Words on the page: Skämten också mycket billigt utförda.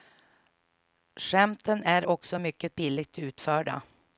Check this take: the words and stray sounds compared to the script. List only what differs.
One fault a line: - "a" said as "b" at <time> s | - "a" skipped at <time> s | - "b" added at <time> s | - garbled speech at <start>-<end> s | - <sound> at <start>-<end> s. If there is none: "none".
- "är" added at 1.8 s